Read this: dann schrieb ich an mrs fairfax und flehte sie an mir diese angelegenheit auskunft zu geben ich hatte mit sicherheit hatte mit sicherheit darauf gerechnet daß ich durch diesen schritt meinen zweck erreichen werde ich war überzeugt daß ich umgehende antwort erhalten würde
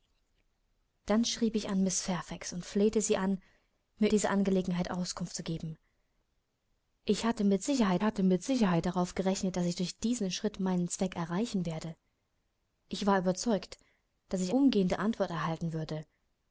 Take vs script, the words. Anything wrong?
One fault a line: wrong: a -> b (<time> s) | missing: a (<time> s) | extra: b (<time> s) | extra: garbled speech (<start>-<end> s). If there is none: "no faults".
no faults